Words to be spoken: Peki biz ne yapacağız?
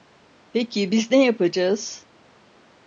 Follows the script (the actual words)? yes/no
yes